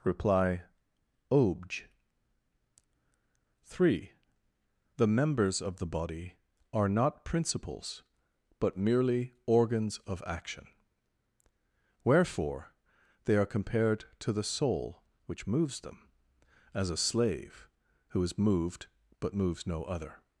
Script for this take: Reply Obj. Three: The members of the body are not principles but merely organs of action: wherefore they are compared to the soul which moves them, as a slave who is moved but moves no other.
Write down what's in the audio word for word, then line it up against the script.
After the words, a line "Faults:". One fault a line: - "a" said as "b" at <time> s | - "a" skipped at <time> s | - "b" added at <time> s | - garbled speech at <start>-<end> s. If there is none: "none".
Reply Obj. Three: The members of the body are not principles but merely organs of action: wherefore they are compared to the soul which moves them, as a slave who is moved but moves no other.
Faults:
none